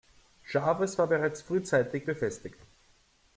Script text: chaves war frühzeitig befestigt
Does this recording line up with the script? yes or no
no